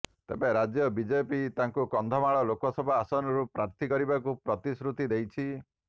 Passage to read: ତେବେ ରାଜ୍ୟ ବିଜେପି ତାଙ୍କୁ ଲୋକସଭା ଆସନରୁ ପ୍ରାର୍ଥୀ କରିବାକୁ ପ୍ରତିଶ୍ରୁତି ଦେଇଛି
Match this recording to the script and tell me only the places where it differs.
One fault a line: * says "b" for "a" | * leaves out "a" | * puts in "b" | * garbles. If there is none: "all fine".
* puts in "କନ୍ଧମାଳ"